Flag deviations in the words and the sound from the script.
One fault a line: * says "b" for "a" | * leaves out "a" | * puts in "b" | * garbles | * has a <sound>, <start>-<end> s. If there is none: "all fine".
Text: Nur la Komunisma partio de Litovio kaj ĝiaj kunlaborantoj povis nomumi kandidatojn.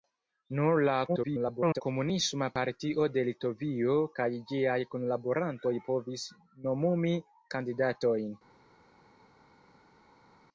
* garbles